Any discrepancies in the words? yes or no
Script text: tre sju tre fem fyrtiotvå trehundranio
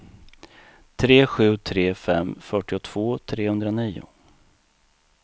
no